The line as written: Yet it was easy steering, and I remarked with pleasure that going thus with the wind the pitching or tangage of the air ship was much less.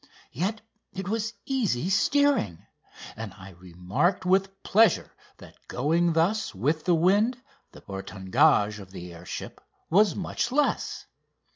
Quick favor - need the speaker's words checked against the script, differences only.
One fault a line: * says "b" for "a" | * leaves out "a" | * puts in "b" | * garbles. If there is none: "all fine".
* leaves out "pitching"